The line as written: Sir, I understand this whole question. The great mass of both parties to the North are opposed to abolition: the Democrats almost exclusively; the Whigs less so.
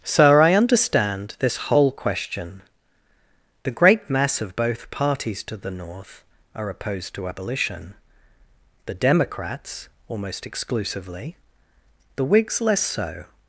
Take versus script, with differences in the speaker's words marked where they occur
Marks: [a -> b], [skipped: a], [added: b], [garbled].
Sir, I understand this whole question. The great mass of both parties to the North are opposed to abolition: the Democrats almost exclusively; the Whigs less so.